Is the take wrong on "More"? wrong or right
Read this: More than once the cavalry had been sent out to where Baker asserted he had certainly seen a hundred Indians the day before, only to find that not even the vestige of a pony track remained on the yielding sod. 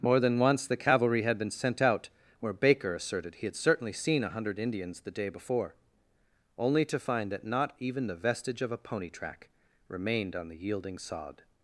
right